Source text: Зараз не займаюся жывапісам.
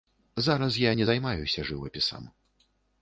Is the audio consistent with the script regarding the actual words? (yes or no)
no